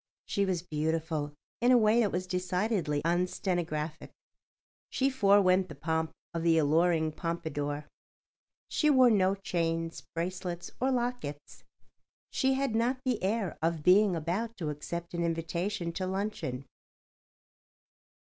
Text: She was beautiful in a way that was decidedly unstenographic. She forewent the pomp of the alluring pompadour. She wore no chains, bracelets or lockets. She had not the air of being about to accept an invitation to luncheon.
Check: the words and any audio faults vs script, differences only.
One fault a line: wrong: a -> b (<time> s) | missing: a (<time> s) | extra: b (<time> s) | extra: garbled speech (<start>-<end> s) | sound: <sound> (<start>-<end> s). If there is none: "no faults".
no faults